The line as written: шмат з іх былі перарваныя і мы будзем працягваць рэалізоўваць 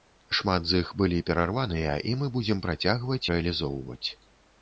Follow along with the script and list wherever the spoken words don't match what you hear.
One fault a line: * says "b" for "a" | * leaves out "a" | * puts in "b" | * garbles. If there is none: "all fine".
all fine